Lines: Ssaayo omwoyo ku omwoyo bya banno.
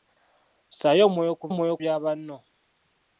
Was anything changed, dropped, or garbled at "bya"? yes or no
no